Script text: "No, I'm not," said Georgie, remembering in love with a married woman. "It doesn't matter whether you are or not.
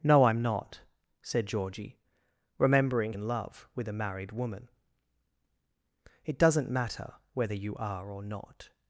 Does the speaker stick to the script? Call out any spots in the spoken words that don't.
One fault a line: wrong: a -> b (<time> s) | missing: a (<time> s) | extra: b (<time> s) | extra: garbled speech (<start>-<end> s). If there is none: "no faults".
no faults